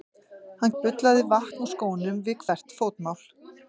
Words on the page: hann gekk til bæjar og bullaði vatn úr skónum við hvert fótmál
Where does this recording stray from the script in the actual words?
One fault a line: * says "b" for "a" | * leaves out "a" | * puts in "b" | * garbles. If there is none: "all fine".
* leaves out "gekk til bæjar"